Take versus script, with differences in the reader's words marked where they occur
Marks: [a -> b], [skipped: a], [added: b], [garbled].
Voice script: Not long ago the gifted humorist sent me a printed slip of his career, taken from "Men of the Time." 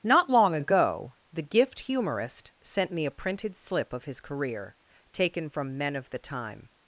Not long ago the [gifted -> gift] humorist sent me a printed slip of his career, taken from "Men of the Time."